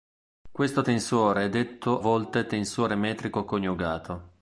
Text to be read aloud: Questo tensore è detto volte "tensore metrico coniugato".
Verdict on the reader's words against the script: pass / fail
pass